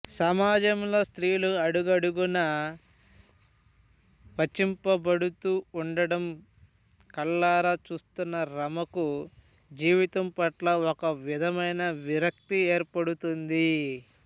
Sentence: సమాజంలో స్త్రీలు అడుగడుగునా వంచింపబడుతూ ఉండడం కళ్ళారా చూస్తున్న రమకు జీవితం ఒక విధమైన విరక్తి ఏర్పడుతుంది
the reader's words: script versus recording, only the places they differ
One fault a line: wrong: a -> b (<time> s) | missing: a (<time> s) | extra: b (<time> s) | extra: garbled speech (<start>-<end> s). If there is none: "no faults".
extra: పట్ల (10.4 s)